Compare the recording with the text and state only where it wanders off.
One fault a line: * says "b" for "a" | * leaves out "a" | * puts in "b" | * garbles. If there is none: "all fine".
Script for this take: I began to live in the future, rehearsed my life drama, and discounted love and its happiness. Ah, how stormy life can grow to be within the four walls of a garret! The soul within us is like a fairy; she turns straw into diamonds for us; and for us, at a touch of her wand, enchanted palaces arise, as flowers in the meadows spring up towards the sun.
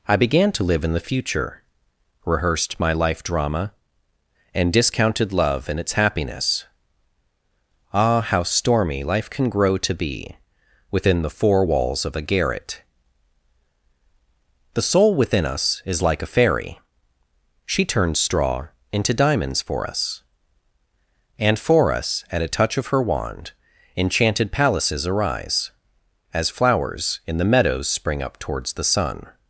all fine